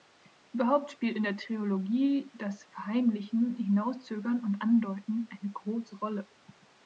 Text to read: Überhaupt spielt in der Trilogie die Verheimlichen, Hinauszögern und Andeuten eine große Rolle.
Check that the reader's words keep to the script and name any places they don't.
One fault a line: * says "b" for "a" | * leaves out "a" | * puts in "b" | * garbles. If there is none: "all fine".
* says "das" for "die"